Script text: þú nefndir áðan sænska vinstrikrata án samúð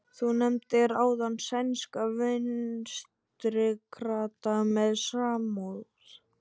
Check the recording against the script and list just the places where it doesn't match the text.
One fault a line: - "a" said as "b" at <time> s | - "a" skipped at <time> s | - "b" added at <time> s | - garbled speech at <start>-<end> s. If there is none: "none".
- "án" said as "með" at 4.7 s